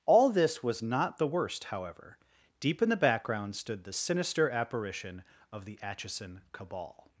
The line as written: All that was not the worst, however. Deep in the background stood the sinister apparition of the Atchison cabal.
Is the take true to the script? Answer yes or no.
no